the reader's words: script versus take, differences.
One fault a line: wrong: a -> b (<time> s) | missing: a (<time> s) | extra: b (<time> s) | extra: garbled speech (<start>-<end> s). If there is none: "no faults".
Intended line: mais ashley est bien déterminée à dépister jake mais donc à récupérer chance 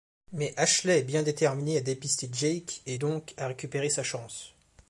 wrong: mais -> et (2.9 s)
extra: sa (3.9 s)